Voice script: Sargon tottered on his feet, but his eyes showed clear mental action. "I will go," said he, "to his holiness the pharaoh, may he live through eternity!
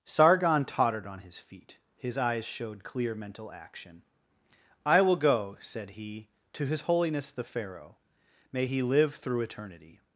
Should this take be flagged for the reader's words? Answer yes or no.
yes